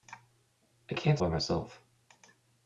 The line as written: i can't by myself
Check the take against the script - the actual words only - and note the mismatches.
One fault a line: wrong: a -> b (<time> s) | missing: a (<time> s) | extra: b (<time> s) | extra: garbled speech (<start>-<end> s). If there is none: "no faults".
no faults